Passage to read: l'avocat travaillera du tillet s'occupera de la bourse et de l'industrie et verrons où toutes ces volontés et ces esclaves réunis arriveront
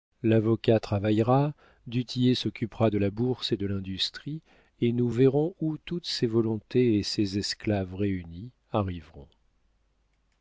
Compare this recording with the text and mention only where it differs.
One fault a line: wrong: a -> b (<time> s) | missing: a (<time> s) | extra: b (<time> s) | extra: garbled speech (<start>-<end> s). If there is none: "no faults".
extra: nous (4.9 s)